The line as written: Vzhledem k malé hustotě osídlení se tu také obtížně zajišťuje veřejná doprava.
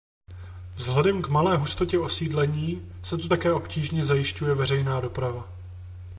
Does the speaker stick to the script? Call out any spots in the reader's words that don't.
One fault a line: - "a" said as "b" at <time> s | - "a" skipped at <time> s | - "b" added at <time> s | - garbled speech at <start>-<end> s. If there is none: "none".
none